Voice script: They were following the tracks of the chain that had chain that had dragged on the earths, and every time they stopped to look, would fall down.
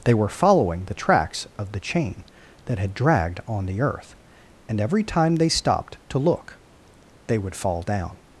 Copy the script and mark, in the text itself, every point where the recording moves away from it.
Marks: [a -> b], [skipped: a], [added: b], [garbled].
They were following the tracks of the chain that had [skipped: chain that had] dragged on the [earths, -> earth] and every time they stopped to look, [added: they] would fall down.